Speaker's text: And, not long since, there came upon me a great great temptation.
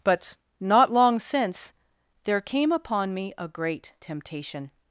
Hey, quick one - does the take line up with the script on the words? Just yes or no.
no